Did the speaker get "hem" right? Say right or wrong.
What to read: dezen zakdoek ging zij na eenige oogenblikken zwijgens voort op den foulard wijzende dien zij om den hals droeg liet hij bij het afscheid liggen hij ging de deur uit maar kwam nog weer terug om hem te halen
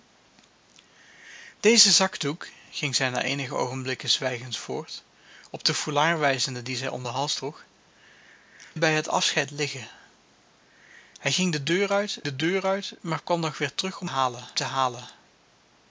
wrong